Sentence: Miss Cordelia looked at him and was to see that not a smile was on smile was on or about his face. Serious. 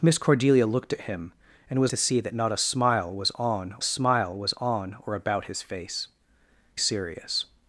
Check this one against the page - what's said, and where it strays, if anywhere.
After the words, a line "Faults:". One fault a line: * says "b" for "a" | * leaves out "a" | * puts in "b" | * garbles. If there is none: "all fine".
Miss Cordelia looked at him and was to see that not a smile was on smile was on or about his face. Serious.
Faults:
all fine